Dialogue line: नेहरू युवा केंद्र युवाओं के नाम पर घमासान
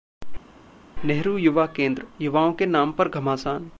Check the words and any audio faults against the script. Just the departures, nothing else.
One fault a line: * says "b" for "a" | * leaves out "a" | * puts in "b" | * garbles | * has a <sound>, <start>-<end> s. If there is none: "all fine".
all fine